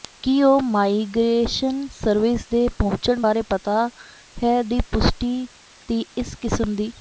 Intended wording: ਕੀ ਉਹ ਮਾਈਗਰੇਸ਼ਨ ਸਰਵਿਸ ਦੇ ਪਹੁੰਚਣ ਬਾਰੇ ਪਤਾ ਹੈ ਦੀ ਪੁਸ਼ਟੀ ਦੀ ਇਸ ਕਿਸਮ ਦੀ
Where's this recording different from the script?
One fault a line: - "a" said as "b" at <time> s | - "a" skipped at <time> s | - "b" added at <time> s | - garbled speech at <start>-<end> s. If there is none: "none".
none